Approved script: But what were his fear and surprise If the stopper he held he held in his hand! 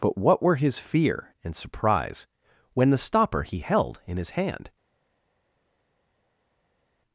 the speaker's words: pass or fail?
fail